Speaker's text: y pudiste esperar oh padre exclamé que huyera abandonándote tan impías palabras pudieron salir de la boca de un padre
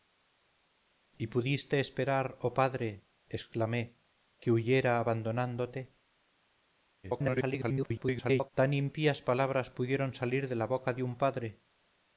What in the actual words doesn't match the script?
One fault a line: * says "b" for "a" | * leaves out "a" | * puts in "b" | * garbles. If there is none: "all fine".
* garbles